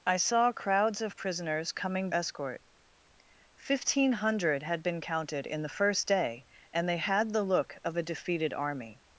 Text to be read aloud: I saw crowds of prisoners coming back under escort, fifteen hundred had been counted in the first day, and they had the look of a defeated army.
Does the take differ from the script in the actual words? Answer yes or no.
yes